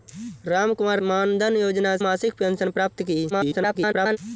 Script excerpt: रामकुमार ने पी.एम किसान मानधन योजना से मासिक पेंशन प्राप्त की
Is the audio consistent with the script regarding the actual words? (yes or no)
no